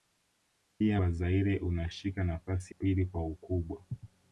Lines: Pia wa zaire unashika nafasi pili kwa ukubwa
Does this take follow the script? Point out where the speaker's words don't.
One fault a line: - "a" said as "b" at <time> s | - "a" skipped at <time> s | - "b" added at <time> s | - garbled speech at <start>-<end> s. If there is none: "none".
none